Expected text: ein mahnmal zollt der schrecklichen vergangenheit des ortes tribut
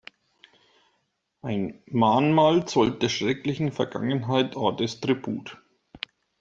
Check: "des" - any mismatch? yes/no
yes